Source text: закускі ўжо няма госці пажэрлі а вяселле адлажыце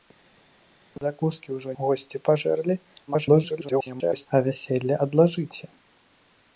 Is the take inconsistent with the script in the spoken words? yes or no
yes